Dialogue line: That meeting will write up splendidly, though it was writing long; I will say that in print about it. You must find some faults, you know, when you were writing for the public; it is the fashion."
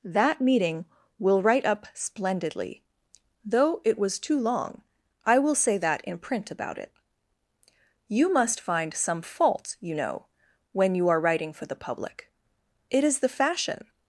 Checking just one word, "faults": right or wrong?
wrong